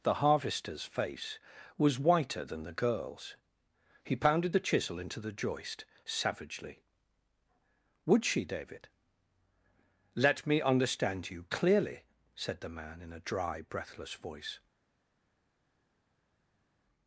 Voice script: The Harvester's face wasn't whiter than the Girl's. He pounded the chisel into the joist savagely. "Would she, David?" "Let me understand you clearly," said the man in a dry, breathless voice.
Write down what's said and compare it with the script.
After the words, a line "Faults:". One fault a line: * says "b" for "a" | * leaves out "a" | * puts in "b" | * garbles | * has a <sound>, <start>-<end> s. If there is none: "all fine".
The Harvester's face was whiter than the Girl's. He pounded the chisel into the joist savagely. "Would she, David?" "Let me understand you clearly," said the man in a dry, breathless voice.
Faults:
* says "was" for "wasn't"